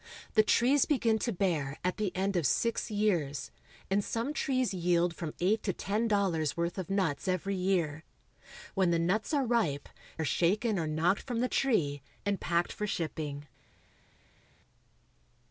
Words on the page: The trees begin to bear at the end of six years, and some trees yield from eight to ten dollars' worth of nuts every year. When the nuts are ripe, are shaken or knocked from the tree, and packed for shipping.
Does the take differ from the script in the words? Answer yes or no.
no